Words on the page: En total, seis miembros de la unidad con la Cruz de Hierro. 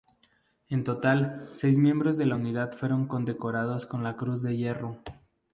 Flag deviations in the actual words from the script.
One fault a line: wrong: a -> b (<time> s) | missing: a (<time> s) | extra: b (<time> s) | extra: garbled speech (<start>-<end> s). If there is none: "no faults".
extra: fueron condecorados (2.7 s)